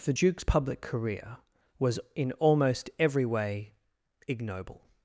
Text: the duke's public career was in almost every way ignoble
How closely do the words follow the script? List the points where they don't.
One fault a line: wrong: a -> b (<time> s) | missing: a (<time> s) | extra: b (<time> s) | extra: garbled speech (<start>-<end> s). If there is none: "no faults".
no faults